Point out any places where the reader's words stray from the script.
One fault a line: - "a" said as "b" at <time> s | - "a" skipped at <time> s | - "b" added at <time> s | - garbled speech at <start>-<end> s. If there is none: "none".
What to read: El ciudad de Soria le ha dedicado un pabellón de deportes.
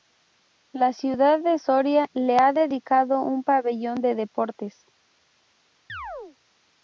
- "El" said as "La" at 0.7 s